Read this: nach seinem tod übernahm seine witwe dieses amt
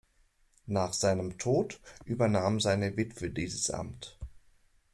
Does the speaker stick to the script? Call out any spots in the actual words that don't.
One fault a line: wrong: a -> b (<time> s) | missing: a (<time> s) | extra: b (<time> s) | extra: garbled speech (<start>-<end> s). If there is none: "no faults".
no faults